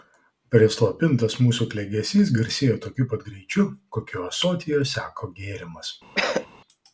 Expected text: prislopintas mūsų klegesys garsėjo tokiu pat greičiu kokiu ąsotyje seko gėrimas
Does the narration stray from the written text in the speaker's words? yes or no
no